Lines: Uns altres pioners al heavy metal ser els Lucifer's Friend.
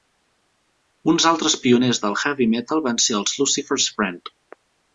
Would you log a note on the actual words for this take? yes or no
yes